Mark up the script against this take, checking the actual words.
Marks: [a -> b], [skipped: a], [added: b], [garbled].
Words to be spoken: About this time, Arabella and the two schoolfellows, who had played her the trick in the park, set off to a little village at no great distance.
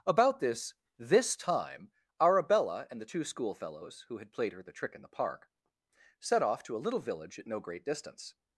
About this [added: this] time, Arabella and the two schoolfellows, who had played her the trick in the park, set off to a little village at no great distance.